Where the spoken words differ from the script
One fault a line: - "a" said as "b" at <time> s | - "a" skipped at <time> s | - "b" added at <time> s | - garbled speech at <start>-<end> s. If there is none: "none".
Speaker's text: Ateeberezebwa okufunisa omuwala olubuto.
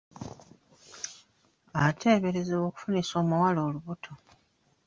none